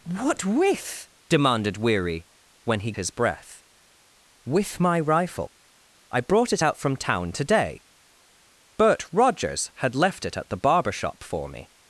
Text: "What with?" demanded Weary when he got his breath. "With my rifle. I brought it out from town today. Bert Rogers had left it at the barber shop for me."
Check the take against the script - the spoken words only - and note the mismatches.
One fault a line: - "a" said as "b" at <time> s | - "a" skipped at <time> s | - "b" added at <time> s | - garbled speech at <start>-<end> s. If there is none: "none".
- "got" skipped at 2.9 s